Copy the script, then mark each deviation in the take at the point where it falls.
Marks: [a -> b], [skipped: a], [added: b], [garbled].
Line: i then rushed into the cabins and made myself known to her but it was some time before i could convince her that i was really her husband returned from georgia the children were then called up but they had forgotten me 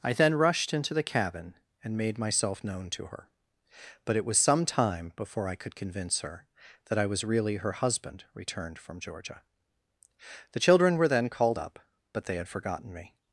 i then rushed into the [cabins -> cabin] and made myself known to her but it was some time before i could convince her that i was really her husband returned from georgia the children were then called up but they had forgotten me